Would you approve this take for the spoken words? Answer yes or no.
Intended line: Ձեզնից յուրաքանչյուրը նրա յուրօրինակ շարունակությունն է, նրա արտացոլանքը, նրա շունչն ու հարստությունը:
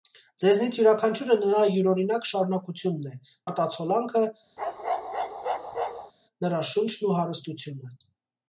no